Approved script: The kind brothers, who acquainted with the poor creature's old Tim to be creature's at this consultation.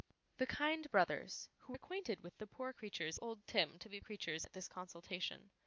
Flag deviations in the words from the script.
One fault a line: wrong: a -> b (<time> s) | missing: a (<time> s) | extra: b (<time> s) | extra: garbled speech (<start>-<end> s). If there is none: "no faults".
no faults